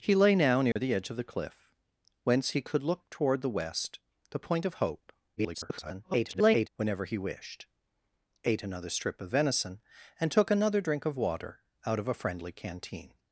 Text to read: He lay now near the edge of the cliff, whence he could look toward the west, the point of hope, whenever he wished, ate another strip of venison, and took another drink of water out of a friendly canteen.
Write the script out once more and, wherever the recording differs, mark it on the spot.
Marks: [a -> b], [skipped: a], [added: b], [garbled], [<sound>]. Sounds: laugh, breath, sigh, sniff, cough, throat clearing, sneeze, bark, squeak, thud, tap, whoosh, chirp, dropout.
He lay now near [dropout] the edge of the cliff, whence he could look toward the west, the point of hope, [garbled] whenever he wished, ate another strip of venison, and took another drink of water out of a friendly canteen.